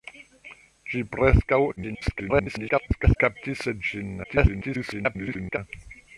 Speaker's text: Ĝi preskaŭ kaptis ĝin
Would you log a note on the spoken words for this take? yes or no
yes